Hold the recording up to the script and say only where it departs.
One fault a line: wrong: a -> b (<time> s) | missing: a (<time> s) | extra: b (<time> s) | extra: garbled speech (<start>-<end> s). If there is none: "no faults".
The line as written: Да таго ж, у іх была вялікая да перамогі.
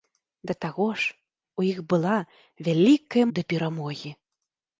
no faults